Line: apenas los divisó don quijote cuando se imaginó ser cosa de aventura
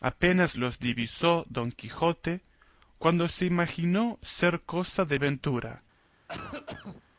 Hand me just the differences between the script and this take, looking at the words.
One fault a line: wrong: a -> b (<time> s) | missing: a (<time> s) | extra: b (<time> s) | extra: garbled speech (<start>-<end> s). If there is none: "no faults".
no faults